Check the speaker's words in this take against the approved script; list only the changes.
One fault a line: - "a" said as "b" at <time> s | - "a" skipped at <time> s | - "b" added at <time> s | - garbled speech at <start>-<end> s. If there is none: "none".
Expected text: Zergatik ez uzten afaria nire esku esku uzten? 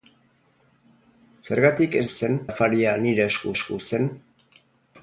none